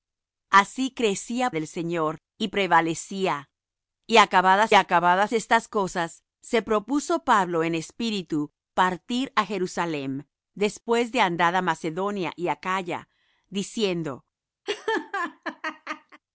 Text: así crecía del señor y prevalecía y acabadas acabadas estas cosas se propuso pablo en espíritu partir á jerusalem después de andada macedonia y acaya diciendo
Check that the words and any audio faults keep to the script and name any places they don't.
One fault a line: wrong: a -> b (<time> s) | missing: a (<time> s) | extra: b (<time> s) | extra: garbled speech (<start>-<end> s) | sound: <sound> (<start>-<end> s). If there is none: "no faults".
sound: laugh (14.7-16.2 s)